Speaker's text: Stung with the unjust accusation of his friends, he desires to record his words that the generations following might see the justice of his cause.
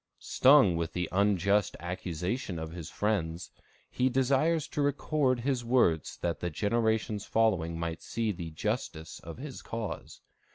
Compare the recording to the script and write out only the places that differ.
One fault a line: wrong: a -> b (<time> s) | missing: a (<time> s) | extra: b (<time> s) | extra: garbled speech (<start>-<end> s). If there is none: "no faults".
no faults